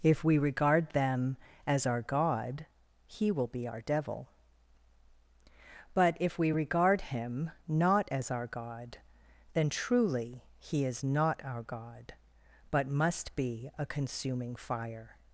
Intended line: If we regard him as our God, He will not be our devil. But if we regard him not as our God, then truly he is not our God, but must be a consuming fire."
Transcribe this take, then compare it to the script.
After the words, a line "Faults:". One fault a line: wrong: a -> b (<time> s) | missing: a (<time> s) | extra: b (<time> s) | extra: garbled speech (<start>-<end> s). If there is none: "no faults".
If we regard them as our God, He will be our devil. But if we regard him not as our God, then truly he is not our God, but must be a consuming fire."
Faults:
wrong: him -> them (0.9 s)
missing: not (3.5 s)